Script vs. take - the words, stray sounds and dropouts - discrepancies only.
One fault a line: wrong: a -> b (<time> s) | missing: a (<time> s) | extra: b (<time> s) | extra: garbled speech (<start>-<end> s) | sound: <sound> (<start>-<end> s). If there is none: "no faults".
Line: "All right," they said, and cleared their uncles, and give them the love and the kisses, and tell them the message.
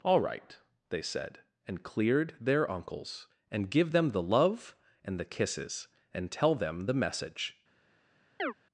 sound: chirp (8.4-8.5 s)